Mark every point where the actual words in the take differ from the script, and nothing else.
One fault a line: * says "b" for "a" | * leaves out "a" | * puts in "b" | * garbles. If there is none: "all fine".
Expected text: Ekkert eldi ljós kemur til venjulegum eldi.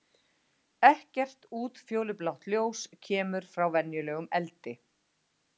* says "útfjólublátt" for "eldi"
* says "frá" for "til"